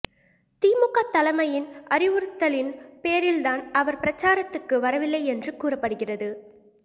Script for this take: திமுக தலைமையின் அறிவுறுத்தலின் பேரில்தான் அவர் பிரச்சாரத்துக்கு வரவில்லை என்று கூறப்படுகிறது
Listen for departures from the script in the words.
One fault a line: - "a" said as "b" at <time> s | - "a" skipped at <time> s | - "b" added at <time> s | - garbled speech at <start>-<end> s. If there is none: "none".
none